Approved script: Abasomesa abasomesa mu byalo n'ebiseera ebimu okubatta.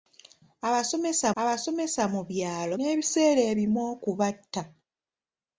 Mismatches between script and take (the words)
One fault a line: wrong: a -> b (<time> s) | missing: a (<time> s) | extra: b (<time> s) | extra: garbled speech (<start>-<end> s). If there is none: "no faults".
no faults